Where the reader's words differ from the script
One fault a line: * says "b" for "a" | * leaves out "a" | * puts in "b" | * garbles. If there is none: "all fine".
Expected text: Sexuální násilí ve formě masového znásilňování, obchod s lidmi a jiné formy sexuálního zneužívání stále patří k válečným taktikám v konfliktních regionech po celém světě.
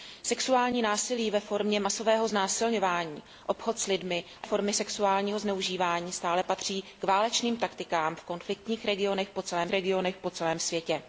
* leaves out "jiné"
* puts in "regionech po celém"